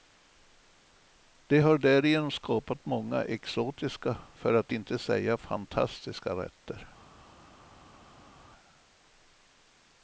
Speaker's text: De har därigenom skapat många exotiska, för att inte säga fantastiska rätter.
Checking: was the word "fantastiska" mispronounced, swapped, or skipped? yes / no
no